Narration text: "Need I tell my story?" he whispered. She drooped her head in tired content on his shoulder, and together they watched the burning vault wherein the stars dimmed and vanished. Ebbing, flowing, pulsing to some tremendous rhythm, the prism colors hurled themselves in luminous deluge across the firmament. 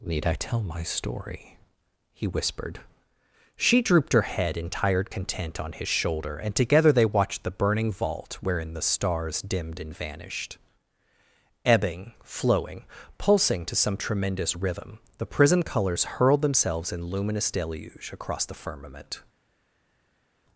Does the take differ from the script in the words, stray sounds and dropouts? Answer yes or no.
no